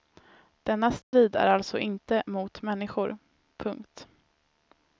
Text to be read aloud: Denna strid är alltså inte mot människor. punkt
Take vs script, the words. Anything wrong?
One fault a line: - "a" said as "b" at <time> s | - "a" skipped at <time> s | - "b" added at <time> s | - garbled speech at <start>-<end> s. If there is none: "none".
none